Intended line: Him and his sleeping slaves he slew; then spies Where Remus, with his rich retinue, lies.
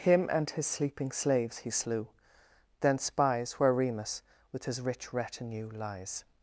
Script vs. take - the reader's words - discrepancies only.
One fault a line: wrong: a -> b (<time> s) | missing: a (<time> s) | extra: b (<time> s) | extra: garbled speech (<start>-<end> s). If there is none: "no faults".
no faults